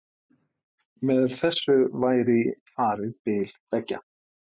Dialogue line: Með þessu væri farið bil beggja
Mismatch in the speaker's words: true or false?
false